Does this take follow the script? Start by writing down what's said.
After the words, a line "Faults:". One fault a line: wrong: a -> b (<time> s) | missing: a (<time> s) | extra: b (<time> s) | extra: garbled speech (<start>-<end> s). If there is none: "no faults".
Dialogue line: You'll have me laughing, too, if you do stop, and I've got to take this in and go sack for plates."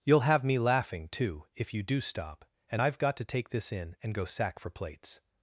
You'll have me laughing, too, if you do stop, and I've got to take this in and go sack for plates."
Faults:
no faults